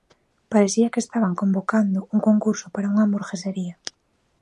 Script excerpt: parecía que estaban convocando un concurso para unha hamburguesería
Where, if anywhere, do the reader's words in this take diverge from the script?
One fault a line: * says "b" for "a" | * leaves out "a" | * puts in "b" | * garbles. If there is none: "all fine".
all fine